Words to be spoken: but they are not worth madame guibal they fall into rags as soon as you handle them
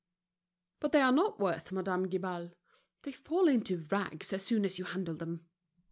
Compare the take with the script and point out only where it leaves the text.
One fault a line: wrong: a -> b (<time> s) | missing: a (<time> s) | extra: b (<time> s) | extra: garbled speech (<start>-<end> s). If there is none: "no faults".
no faults